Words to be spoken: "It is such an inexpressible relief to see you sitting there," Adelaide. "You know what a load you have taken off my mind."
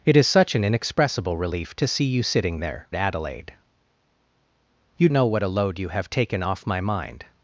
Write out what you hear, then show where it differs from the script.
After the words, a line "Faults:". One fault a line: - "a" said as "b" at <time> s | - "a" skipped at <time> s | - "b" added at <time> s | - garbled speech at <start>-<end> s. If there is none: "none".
"It is such an inexpressible relief to see you sitting there," Adelaide. "You know what a load you have taken off my mind."
Faults:
none